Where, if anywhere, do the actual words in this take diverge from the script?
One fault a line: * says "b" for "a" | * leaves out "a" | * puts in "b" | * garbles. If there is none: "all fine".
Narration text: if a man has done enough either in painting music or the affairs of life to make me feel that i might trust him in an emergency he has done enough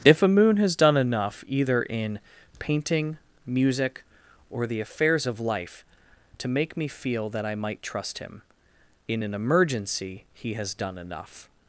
* says "moon" for "man"